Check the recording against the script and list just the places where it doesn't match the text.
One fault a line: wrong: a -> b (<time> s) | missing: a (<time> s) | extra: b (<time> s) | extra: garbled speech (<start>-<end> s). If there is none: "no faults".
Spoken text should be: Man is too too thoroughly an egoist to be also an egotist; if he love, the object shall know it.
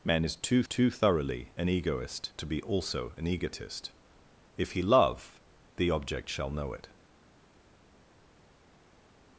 no faults